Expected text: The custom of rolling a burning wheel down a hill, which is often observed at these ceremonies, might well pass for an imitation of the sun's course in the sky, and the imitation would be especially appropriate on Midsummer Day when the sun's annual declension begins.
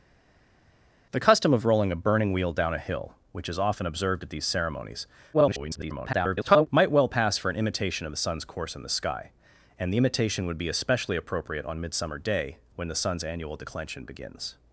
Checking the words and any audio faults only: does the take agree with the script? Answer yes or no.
no